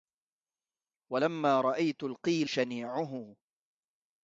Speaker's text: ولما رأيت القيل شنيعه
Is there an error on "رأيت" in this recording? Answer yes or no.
no